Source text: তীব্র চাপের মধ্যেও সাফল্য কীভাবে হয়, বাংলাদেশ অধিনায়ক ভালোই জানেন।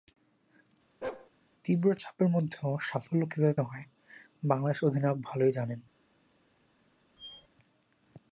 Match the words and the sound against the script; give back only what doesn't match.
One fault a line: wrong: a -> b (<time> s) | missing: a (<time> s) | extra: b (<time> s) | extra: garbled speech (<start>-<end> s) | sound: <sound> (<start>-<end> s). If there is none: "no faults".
sound: bark (1.0-1.3 s)
sound: squeak (7.2-7.5 s)